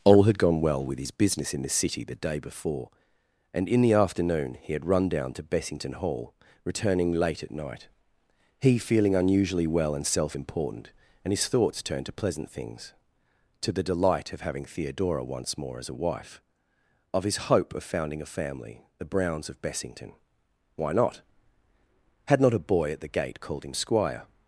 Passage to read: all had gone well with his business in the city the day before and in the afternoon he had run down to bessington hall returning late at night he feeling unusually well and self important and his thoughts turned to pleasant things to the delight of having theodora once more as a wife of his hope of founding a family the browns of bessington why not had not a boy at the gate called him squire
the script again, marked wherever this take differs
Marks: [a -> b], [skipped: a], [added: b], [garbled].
all had gone well with his business in the city the day before and in the afternoon he had run down to bessington hall returning late at night he feeling unusually well and self important and his thoughts turned to pleasant things to the delight of having theodora once more as a wife of his hope of founding a family the browns of bessington why not had not a boy at the gate called him squire